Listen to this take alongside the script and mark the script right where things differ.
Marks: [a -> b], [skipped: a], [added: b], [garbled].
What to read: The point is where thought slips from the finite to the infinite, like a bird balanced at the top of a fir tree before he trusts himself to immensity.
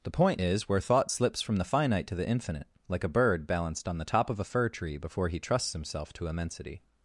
The point is where thought slips from the finite to the infinite, like a bird balanced [at -> on] the top of a fir tree before he trusts himself to immensity.